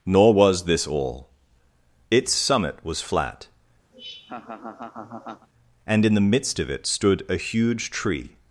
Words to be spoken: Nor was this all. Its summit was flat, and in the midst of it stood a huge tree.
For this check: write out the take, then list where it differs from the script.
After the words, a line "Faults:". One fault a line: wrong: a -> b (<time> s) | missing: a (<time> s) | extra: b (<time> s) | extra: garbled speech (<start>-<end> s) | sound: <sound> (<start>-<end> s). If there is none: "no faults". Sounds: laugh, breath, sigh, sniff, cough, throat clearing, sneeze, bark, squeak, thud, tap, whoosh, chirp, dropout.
Nor was this all. Its summit was flat, and in the midst of it stood a huge tree.
Faults:
sound: laugh (3.9-5.5 s)